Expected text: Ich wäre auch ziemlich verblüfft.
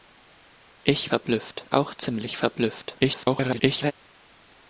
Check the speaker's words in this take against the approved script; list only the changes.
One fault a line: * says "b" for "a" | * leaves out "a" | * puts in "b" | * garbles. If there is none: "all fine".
* says "verblüfft" for "wäre"
* garbles